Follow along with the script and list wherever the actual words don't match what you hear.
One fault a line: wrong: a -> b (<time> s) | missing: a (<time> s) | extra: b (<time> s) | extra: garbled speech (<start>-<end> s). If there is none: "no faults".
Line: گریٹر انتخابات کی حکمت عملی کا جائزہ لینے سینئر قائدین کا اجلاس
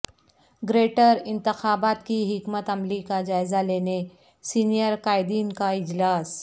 no faults